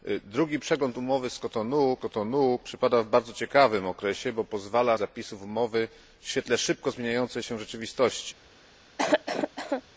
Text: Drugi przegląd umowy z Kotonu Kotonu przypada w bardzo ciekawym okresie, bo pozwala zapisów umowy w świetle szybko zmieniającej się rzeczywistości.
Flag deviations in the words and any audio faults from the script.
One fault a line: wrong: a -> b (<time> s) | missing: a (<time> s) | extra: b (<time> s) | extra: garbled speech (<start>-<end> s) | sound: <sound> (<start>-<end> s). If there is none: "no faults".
sound: cough (9.0-9.8 s)